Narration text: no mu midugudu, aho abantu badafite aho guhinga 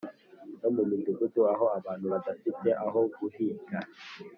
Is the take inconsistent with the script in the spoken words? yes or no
no